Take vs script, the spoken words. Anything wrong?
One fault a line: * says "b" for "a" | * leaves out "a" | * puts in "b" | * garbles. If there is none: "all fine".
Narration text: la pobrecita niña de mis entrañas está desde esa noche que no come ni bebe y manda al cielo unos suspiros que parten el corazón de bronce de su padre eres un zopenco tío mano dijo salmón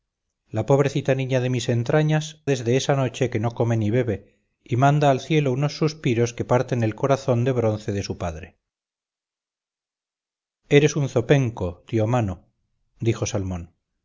* leaves out "está"